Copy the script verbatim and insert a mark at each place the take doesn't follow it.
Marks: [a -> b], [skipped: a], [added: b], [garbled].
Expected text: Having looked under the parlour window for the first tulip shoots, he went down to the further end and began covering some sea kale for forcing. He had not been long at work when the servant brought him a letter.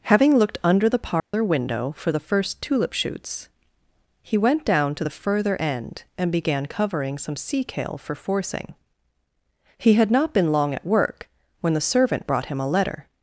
Having looked under the parlour window for the first tulip shoots, he went down to the further end and began covering some sea kale for forcing. He had not been long at work when the servant brought him a letter.